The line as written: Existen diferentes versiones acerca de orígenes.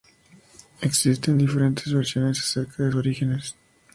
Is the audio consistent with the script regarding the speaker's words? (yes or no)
yes